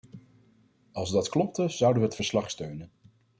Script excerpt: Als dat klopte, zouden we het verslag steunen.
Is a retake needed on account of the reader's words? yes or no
no